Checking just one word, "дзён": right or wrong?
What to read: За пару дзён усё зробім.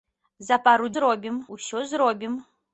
wrong